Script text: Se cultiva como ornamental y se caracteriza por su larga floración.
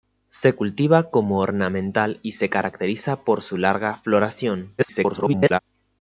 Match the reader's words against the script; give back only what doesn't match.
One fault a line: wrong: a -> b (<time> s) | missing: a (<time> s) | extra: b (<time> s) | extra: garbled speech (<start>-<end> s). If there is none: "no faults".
extra: garbled speech (4.8-5.6 s)